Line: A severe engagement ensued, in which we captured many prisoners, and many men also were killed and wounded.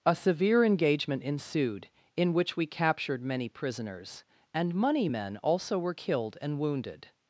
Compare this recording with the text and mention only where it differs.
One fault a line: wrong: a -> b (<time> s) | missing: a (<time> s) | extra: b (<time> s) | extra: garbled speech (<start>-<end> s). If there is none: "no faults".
wrong: many -> money (4.7 s)